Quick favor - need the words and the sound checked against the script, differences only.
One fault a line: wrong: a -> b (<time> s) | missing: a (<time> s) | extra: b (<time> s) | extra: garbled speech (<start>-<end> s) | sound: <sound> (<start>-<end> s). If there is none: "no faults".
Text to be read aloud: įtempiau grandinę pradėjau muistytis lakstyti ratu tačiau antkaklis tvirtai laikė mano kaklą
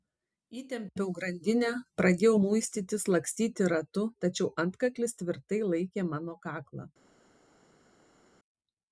no faults